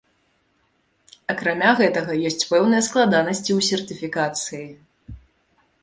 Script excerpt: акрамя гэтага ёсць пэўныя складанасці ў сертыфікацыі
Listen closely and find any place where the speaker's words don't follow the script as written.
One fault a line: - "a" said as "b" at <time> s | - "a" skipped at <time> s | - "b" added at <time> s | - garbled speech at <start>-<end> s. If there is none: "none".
none